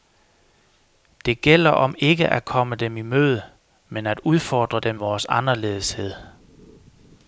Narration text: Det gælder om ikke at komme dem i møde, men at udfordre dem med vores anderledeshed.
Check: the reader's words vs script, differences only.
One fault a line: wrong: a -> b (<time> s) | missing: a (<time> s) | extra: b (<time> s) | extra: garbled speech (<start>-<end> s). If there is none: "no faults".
missing: med (4.9 s)